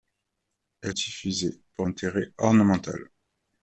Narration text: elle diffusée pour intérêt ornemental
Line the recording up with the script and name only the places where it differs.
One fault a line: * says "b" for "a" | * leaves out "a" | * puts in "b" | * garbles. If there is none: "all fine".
all fine